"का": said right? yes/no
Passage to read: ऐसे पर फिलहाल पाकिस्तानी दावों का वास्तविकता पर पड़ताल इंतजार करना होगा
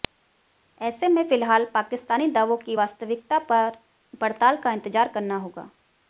no